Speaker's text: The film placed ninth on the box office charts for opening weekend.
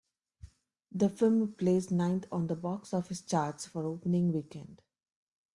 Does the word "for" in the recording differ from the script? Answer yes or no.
no